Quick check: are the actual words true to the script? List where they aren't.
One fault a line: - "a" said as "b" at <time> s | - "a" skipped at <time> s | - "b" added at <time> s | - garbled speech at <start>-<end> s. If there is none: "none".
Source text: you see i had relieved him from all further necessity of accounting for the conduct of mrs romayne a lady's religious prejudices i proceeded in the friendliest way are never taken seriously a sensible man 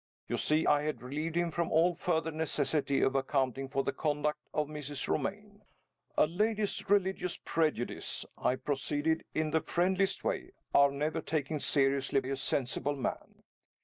none